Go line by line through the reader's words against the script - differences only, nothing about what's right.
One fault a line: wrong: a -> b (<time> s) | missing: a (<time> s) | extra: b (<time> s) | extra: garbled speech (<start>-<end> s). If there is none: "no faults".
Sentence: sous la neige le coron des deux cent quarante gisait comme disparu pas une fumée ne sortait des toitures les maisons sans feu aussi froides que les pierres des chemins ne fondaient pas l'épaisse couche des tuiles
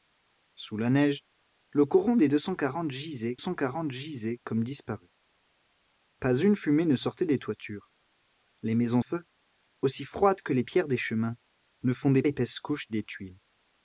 extra: cent quarante gisait (3.4 s)
missing: sans (9.0 s)
missing: pas (12.2 s)